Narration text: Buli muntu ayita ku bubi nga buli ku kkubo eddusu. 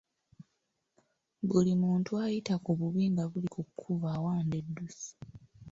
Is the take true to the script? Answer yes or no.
no